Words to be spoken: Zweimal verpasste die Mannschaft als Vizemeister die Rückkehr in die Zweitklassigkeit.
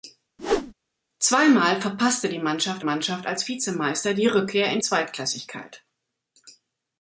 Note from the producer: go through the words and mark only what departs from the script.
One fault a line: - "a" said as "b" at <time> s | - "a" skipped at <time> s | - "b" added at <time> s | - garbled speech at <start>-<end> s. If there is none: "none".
- "Mannschaft" added at 2.8 s
- "die" skipped at 4.8 s